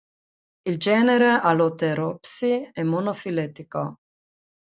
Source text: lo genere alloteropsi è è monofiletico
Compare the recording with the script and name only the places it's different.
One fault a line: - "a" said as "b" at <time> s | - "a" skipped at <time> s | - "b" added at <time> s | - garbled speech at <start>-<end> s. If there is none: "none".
- "lo" said as "il" at 0.6 s
- "è" skipped at 2.8 s